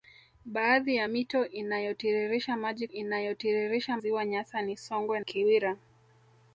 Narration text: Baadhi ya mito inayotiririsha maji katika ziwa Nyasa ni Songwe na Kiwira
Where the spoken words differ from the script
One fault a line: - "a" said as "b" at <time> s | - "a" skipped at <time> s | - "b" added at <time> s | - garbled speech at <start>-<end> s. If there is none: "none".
- "katika" said as "inayotiririsha" at 2.9 s
- "na" skipped at 5.2 s